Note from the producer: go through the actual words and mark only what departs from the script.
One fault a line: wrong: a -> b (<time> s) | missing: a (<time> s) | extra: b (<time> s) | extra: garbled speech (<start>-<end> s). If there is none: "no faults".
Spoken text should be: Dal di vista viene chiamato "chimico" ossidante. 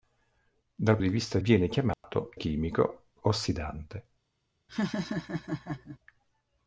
no faults